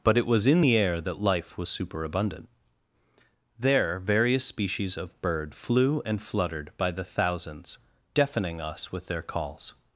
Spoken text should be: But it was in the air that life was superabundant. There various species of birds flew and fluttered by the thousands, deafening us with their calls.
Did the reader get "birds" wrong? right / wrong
wrong